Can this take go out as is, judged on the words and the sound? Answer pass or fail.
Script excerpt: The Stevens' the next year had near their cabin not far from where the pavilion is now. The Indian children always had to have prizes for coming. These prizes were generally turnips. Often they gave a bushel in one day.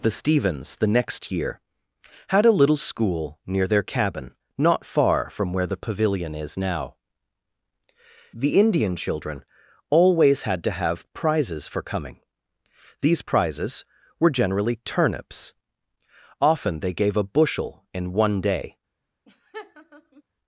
fail